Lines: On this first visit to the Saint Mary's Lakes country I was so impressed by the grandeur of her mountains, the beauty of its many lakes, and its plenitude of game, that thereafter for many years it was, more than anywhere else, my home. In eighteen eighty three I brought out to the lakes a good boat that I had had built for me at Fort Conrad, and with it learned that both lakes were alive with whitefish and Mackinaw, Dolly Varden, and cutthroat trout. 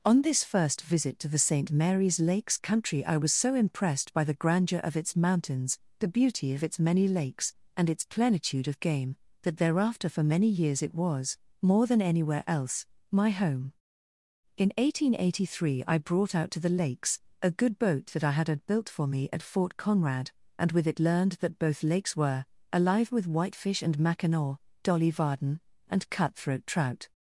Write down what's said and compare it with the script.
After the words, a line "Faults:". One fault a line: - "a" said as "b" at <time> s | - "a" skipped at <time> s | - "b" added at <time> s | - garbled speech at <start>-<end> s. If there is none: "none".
On this first visit to the Saint Mary's Lakes country I was so impressed by the grandeur of its mountains, the beauty of its many lakes, and its plenitude of game, that thereafter for many years it was, more than anywhere else, my home. In eighteen eighty three I brought out to the lakes a good boat that I had had built for me at Fort Conrad, and with it learned that both lakes were alive with whitefish and Mackinaw, Dolly Varden, and cutthroat trout.
Faults:
- "her" said as "its" at 5.0 s